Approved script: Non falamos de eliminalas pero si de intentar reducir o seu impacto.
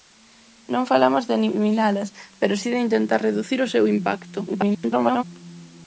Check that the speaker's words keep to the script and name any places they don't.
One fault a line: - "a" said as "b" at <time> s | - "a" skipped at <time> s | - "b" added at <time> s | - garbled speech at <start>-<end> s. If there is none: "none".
- garbled speech at 4.5-5.2 s